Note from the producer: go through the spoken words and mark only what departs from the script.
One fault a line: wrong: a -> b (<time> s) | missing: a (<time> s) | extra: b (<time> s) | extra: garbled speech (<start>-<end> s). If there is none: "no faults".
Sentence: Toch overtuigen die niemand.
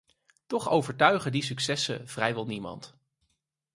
extra: successen vrijwel (1.4 s)